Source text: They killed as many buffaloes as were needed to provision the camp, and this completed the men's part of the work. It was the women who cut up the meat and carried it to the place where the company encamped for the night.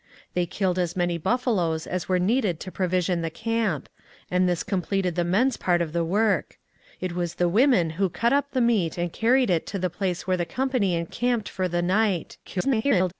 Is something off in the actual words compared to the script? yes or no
yes